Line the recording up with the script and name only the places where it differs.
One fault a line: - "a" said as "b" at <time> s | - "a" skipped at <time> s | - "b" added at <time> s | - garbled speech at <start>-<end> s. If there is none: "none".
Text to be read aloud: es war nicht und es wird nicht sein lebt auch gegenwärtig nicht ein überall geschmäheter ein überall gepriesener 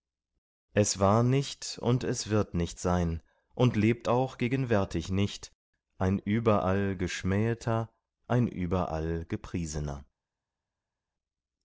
- "und" added at 3.5 s